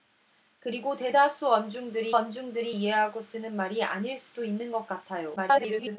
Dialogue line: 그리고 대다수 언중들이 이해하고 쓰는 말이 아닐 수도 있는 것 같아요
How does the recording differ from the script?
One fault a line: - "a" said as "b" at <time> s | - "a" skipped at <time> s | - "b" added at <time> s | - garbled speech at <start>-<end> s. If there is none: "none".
- "언중들이" added at 2.1 s
- garbled speech at 5.4-6.0 s